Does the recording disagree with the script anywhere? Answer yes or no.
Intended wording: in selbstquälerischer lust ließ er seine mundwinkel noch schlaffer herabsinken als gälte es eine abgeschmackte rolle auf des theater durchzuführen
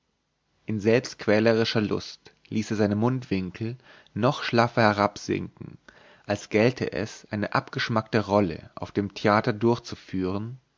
yes